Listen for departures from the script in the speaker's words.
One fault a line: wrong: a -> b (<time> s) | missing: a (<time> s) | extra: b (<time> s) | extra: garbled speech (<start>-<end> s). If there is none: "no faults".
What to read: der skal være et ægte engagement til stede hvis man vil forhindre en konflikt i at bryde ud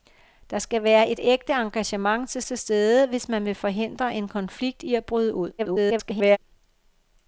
extra: til (2.4 s)
extra: garbled speech (5.6-6.4 s)